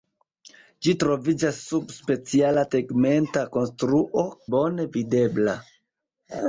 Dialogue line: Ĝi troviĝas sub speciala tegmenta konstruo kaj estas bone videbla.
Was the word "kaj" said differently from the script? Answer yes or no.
yes